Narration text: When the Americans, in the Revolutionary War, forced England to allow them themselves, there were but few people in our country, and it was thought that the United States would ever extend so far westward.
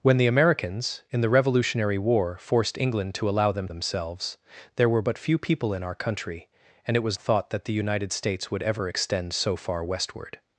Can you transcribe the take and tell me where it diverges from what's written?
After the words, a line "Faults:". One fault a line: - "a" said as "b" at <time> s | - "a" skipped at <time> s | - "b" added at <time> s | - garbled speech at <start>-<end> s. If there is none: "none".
When the Americans, in the Revolutionary War, forced England to allow them themselves, there were but few people in our country, and it was thought that the United States would ever extend so far westward.
Faults:
none